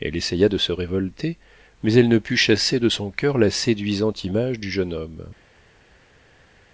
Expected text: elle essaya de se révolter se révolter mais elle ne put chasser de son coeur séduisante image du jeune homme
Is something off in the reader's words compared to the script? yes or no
yes